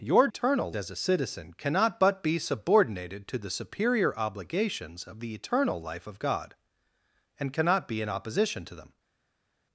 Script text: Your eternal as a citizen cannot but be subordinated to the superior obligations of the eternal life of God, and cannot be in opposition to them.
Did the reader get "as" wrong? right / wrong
right